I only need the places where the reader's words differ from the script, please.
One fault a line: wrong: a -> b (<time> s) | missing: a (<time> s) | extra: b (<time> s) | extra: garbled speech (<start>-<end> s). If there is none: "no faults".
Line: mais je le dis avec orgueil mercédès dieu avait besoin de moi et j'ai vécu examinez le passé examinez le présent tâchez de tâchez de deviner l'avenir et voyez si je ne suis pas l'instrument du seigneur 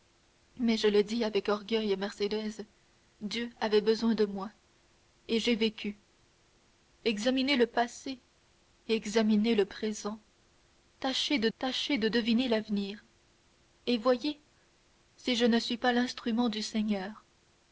no faults